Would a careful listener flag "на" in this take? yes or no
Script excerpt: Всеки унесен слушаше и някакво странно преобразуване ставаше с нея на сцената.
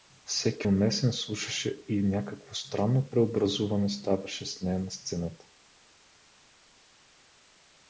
no